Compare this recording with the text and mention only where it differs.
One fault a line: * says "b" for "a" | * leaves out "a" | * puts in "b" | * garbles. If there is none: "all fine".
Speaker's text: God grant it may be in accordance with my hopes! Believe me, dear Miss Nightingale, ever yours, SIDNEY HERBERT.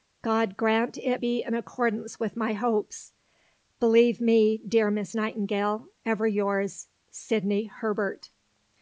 * leaves out "may"